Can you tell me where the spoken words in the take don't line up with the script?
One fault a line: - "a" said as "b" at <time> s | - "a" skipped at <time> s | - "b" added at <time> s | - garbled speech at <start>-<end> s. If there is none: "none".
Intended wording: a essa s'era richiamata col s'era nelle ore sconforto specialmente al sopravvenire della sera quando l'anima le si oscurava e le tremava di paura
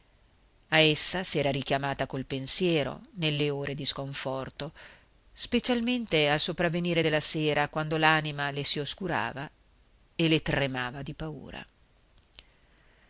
- "s'era" said as "pensiero" at 2.2 s
- "di" added at 3.8 s